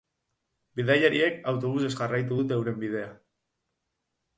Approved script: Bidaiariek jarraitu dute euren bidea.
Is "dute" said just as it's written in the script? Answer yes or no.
yes